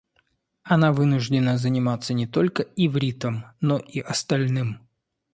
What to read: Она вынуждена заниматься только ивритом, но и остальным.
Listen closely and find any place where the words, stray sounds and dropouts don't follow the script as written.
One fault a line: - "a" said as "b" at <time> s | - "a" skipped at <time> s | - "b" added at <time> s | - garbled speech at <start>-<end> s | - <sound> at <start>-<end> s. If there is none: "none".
- "не" added at 2.1 s